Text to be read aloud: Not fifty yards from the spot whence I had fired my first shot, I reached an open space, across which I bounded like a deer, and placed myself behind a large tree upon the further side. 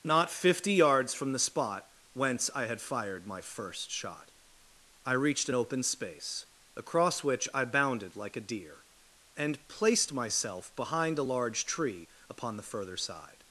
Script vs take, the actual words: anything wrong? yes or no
no